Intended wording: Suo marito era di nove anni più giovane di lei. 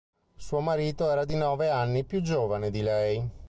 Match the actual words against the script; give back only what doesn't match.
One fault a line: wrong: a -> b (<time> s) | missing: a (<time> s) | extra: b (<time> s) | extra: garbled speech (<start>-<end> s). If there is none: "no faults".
no faults